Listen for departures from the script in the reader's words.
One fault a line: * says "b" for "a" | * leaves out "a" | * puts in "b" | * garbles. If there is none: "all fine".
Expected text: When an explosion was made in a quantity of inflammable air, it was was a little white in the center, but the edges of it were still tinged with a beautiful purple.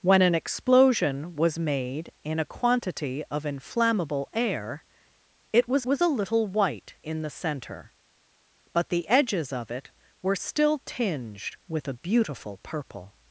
all fine